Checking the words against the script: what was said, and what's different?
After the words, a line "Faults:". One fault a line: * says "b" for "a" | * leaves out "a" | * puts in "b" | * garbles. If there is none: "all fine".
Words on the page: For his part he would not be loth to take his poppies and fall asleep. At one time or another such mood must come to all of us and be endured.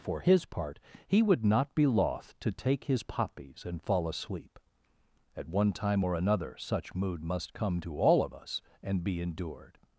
For his part he would not be loth to take his poppies and fall asleep. At one time or another such mood must come to all of us and be endured.
Faults:
all fine